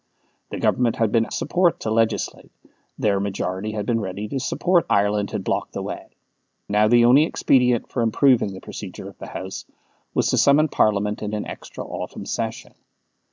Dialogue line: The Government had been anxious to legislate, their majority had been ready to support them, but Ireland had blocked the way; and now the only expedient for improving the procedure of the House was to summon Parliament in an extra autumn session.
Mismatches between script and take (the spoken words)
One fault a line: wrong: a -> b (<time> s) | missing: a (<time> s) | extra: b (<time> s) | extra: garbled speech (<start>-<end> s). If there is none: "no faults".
wrong: anxious -> support (1.3 s)
missing: them but (4.9 s)
missing: and (6.1 s)